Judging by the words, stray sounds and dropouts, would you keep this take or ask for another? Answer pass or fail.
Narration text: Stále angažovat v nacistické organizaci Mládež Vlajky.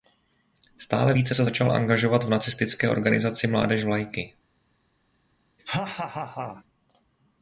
fail